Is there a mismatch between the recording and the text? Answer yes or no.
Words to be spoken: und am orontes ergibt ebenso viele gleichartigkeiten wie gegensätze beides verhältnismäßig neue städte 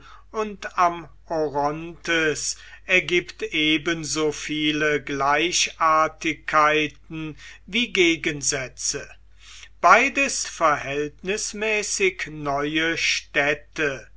no